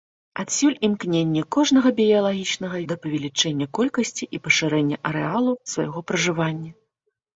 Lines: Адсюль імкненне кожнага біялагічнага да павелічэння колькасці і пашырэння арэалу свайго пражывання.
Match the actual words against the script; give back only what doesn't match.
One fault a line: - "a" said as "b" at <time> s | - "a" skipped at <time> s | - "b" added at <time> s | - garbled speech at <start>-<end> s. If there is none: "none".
none